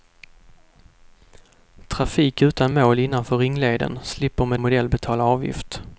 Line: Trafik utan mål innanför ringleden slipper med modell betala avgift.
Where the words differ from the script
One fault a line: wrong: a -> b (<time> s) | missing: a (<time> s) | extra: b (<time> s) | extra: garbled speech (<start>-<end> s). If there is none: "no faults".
no faults